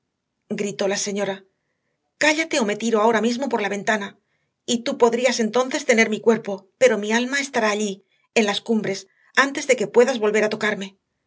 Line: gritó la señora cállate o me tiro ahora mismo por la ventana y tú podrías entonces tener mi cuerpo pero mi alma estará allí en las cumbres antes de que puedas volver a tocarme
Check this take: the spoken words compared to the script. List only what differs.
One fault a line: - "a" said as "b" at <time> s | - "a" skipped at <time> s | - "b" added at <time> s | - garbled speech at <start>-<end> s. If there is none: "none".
none